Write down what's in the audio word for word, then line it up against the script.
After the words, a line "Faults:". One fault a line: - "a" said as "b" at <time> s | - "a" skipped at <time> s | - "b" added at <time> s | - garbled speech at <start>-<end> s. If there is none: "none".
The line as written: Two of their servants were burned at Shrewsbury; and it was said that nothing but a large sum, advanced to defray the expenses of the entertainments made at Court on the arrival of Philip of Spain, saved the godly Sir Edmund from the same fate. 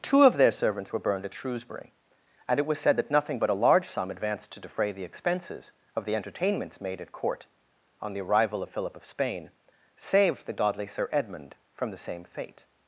Two of their servants were burned at Shrewsbury; and it was said that nothing but a large sum, advanced to defray the expenses of the entertainments made at Court on the arrival of Philip of Spain, saved the godly Sir Edmund from the same fate.
Faults:
none